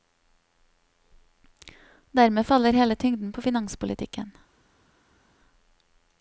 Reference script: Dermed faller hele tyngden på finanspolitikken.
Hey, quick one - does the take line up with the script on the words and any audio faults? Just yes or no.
yes